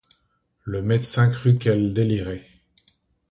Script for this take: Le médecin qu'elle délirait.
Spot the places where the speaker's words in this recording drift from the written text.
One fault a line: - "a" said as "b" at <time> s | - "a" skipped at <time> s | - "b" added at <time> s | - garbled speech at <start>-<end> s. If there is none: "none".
- "crut" added at 1.3 s